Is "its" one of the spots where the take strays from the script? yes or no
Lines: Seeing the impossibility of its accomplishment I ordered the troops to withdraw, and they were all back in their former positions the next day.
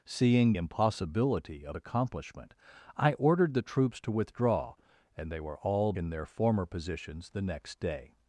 yes